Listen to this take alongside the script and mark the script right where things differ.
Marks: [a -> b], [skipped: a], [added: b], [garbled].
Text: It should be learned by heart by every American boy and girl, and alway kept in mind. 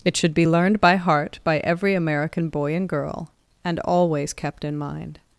It should be learned by heart by every American boy and girl, and [alway -> always] kept in mind.